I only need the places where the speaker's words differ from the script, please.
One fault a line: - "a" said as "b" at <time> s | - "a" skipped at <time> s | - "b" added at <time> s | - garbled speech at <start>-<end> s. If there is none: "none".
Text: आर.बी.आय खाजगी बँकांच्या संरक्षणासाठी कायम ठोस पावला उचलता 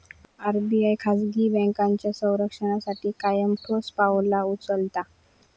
none